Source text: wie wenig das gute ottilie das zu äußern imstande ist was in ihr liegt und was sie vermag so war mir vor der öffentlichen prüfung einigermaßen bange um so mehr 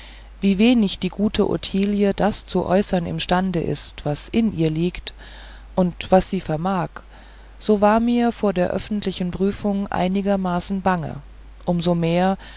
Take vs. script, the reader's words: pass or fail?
fail